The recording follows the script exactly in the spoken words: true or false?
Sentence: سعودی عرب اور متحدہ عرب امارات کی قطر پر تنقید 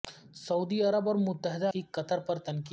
false